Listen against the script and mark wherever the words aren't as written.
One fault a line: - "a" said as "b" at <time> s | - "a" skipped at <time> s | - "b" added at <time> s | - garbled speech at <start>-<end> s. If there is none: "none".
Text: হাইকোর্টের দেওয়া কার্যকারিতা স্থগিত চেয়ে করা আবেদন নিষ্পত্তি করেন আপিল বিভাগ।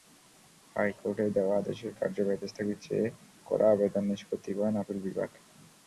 - "আদেশের" added at 1.6 s